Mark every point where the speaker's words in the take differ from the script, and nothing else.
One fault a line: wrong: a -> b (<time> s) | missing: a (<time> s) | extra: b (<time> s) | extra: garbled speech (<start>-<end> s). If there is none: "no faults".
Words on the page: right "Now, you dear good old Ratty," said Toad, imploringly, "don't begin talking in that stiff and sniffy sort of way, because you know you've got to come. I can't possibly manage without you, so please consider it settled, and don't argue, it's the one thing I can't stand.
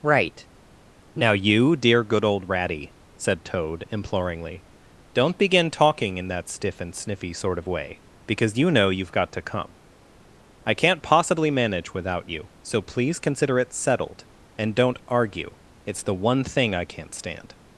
no faults